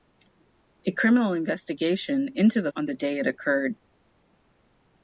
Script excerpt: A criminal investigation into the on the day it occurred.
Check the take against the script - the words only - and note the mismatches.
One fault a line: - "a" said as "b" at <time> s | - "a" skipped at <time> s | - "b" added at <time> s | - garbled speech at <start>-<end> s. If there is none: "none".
none